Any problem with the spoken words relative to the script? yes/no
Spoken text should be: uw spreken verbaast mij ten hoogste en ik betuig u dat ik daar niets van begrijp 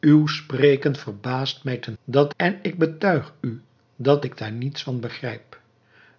yes